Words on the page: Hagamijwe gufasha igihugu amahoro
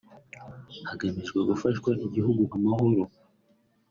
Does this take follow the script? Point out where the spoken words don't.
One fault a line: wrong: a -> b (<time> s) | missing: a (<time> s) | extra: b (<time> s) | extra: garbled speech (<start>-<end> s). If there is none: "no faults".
no faults